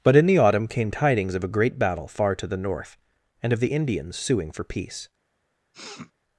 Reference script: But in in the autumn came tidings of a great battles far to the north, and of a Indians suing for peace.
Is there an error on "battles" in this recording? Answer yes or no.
yes